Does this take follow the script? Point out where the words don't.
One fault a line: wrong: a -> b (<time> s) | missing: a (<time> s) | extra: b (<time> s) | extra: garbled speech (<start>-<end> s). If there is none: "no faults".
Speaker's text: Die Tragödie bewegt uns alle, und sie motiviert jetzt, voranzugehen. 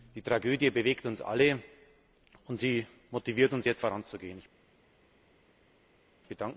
extra: uns (3.5 s)